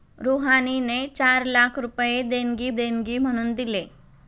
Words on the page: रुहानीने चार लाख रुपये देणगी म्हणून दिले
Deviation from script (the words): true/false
true